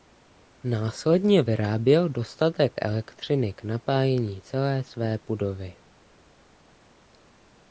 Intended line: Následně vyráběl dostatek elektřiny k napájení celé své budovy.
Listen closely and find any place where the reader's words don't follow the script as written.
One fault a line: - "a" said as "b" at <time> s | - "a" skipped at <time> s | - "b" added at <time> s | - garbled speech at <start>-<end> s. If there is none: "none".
none